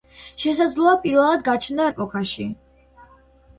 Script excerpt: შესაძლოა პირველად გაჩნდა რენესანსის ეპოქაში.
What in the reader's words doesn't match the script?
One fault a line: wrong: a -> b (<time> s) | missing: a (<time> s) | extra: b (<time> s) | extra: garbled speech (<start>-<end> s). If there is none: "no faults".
missing: რენესანსის (1.9 s)